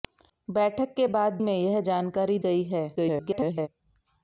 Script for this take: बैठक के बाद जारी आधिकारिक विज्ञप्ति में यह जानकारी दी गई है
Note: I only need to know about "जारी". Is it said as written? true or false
false